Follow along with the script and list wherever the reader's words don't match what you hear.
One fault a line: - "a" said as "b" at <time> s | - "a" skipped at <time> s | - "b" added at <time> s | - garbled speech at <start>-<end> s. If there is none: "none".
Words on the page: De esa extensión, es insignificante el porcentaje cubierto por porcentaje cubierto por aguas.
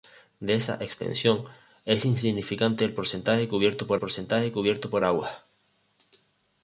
none